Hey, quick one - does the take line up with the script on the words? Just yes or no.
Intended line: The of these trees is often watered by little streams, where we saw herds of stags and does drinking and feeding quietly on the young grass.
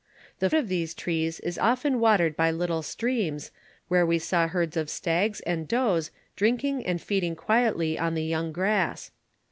yes